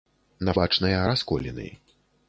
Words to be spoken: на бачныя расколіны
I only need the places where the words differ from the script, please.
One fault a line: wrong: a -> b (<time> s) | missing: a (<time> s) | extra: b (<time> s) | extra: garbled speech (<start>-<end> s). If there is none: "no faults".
no faults